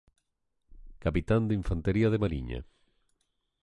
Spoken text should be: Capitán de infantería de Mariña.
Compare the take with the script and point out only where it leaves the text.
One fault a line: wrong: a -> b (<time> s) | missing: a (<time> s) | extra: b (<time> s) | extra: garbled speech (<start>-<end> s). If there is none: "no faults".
no faults